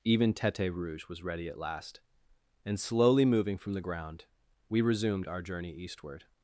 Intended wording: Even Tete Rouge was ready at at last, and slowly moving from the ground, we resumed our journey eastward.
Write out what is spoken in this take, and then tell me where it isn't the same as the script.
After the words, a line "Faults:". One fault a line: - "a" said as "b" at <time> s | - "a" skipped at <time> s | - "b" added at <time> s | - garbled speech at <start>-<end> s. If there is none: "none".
Even Tete Rouge was ready at last, and slowly moving from the ground, we resumed our journey eastward.
Faults:
- "at" skipped at 1.6 s